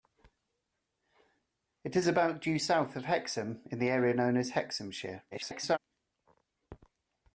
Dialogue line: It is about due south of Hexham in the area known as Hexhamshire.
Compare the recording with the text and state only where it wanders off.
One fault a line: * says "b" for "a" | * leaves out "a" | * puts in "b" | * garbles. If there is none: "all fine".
* garbles